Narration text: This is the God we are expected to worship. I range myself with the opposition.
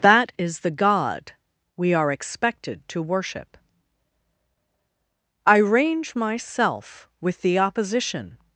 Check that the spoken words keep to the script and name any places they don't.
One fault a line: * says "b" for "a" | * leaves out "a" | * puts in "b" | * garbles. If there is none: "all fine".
* says "That" for "This"